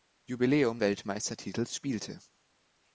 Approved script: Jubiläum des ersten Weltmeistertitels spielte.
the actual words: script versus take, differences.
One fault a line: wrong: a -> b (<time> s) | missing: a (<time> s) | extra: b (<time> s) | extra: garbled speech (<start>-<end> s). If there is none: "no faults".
missing: des ersten (0.8 s)